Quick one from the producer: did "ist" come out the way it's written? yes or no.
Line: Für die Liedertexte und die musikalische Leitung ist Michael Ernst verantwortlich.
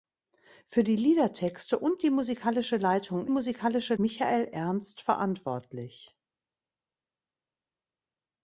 no